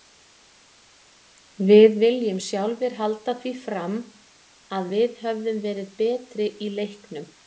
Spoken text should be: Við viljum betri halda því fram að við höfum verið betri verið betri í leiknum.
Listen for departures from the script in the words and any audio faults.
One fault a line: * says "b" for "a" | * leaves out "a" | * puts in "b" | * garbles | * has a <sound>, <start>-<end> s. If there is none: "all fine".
* says "sjálfir" for "betri"
* leaves out "verið betri"